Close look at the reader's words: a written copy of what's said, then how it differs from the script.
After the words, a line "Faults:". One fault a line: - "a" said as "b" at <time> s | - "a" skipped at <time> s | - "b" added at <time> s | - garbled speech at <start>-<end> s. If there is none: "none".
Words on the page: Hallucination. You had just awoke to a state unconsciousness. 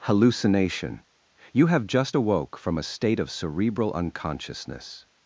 Hallucination. You have just awoke from a state of cerebral unconsciousness.
Faults:
- "had" said as "have" at 1.7 s
- "to" said as "from" at 2.5 s
- "of cerebral" added at 3.2 s